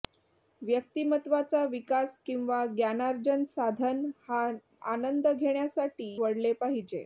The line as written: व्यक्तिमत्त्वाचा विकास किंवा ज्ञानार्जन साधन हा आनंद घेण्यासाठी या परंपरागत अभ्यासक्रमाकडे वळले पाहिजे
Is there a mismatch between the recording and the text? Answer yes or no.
yes